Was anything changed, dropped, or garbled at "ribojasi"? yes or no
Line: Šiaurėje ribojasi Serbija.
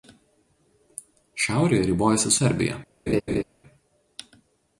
no